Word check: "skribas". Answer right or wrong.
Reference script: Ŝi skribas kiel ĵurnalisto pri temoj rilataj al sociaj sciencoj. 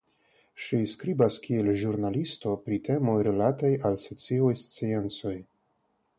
right